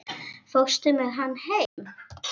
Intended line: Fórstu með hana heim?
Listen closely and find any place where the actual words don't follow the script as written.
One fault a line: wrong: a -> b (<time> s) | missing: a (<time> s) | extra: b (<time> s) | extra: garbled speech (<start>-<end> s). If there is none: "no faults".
no faults